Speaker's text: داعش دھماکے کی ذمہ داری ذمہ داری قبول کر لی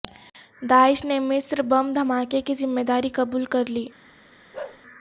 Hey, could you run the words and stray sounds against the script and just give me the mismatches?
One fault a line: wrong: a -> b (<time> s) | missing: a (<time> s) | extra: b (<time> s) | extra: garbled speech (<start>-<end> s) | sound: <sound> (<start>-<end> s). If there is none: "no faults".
extra: نے مصر بم (1.1 s)
missing: ذمہ داری (3.1 s)
sound: bark (4.5-4.8 s)